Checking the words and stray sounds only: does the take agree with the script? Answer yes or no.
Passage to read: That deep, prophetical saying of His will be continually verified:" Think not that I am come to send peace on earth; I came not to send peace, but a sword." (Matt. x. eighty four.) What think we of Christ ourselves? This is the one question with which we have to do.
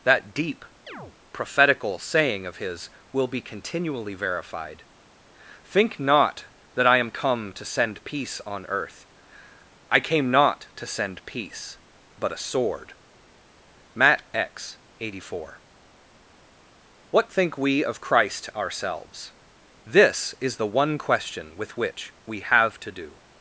no